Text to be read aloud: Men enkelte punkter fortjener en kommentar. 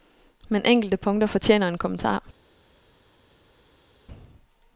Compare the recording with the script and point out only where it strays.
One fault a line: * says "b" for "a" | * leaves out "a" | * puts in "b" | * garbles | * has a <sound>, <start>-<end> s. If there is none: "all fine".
all fine